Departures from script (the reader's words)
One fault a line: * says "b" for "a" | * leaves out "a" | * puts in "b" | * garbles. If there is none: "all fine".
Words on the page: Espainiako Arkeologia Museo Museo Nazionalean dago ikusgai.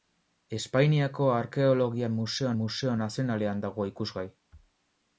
all fine